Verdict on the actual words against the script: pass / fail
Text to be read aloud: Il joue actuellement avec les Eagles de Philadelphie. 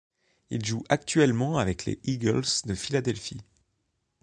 pass